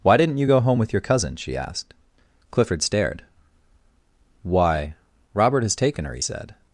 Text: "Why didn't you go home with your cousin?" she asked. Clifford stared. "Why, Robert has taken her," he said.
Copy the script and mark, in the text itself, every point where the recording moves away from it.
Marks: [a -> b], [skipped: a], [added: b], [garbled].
"Why didn't you go home with your cousin?" she asked. Clifford stared. "Why, Robert has taken her," he said.